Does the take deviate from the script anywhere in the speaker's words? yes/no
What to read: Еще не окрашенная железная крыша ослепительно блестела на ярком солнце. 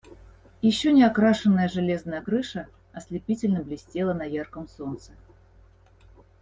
no